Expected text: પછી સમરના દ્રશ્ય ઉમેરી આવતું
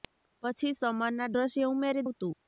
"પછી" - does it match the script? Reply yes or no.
yes